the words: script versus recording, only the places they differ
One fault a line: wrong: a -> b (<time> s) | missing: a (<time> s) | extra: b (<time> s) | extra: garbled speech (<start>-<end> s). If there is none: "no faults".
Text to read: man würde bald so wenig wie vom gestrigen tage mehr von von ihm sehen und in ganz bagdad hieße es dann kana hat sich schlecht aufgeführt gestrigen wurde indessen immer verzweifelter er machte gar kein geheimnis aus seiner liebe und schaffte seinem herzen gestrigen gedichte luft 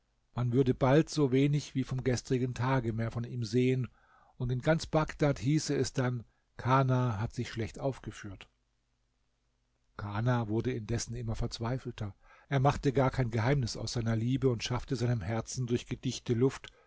missing: von (3.2 s)
wrong: gestrigen -> kana (10.0 s)
wrong: gestrigen -> durch (15.7 s)